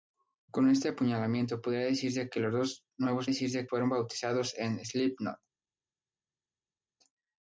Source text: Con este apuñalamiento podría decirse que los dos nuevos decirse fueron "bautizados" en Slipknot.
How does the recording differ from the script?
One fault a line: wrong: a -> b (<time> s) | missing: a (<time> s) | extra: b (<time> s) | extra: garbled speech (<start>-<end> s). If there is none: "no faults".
no faults